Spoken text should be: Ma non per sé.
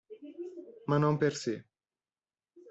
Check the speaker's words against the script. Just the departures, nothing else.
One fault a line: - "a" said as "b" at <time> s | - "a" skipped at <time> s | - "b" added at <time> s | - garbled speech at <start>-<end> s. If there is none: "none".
none